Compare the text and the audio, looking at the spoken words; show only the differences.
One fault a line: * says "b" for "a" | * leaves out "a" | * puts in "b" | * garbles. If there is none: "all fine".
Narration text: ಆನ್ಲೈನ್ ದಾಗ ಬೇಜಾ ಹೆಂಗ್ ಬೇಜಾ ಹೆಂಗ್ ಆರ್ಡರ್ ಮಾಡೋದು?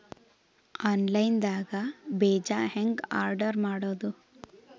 * leaves out "ಬೇಜಾ ಹೆಂಗ್"